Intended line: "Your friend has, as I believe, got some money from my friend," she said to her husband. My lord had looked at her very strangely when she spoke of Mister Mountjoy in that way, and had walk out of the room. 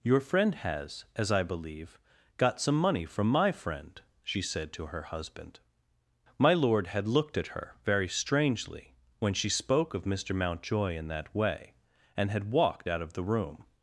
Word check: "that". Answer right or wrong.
right